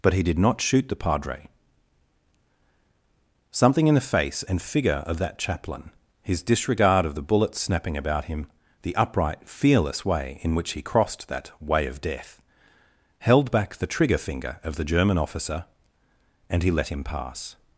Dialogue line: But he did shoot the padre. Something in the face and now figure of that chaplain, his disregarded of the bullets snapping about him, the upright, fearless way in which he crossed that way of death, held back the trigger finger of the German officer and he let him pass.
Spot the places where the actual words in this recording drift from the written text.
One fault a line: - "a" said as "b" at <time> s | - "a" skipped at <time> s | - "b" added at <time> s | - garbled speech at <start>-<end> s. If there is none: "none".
- "not" added at 0.4 s
- "now" skipped at 4.6 s
- "disregarded" said as "disregard" at 6.4 s